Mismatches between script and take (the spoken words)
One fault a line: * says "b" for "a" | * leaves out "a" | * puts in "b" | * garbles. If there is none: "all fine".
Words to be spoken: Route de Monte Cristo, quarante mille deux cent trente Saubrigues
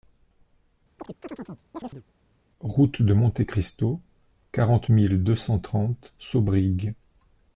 all fine